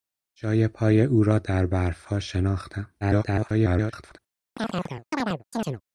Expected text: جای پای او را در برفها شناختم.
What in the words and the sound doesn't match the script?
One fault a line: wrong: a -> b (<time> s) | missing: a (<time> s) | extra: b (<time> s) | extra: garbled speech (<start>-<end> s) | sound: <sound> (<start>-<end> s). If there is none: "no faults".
extra: garbled speech (3.0-4.2 s)
sound: chirp (4.6-5.8 s)